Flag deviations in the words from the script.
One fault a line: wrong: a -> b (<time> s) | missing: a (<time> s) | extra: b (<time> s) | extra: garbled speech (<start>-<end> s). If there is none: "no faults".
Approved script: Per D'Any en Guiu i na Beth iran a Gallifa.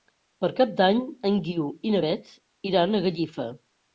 extra: Cap (0.6 s)